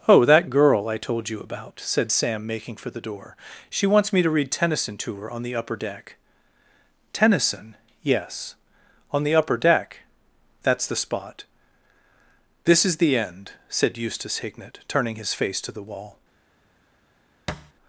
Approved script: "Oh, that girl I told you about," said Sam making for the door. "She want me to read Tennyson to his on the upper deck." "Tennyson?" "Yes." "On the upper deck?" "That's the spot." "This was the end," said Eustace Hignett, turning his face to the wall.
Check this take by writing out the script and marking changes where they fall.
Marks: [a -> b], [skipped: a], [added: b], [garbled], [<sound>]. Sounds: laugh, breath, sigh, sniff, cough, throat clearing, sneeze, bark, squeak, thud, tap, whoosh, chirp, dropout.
"Oh, that girl I told you about," said Sam making for the door. "She [want -> wants] me to read Tennyson to [his -> her] on the upper deck." "Tennyson?" "Yes." "On the upper deck?" "That's the spot." "This [was -> is] the end," said Eustace Hignett, turning his face to the wall. [thud]